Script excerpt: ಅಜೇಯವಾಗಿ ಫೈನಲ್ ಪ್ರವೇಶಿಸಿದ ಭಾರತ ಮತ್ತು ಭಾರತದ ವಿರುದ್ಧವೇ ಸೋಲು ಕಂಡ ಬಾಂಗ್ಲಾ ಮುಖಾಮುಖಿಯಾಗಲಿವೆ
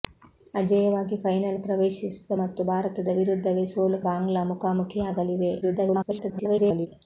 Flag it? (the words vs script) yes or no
yes